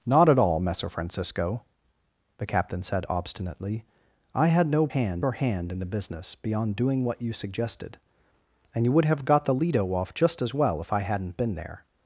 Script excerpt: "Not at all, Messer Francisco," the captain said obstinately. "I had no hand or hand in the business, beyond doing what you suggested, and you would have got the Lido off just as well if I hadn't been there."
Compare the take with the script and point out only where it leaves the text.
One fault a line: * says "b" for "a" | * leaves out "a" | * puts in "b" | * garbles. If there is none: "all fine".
all fine